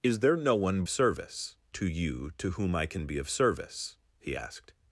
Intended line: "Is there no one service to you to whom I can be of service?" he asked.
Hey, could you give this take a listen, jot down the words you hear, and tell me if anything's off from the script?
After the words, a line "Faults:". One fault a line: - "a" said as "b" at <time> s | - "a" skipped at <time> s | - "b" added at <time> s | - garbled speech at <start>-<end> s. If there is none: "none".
"Is there no one service to you to whom I can be of service?" he asked.
Faults:
none